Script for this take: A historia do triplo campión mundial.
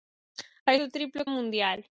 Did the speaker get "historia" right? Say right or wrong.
wrong